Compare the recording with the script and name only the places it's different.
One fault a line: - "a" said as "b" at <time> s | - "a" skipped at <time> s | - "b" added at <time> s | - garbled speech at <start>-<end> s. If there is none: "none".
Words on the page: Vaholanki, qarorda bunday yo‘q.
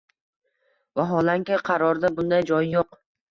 - "joyi" added at 2.5 s